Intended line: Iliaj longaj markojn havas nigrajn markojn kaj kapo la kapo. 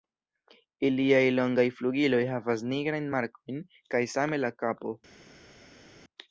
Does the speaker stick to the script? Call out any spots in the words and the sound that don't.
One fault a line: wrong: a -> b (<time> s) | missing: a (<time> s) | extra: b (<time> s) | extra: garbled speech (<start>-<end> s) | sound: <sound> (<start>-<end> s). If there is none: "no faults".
wrong: markojn -> flugiloj (1.8 s)
wrong: kapo -> same (4.1 s)